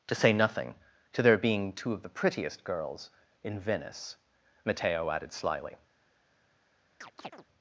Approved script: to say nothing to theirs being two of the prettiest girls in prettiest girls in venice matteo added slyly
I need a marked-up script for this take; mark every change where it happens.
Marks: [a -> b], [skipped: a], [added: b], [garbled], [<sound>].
to say nothing to [theirs -> their] being two of the prettiest girls in [skipped: prettiest girls in] venice matteo added slyly [chirp]